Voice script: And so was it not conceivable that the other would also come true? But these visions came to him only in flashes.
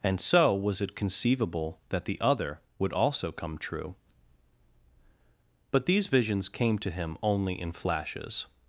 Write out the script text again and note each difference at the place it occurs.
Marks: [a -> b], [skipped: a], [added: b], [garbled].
And so was it [skipped: not] conceivable that the other would also come true? But these visions came to him only in flashes.